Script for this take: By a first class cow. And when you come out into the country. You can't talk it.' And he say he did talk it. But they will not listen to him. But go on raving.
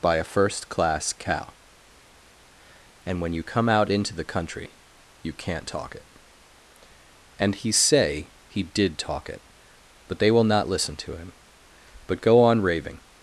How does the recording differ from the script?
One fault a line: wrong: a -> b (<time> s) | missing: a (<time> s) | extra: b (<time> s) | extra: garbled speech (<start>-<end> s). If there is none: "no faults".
no faults